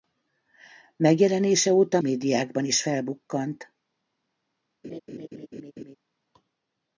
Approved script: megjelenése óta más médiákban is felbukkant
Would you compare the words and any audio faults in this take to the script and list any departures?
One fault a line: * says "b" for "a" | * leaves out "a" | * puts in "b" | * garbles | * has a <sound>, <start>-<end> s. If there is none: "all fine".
* leaves out "más"
* has a laugh, 4.8-6.0 s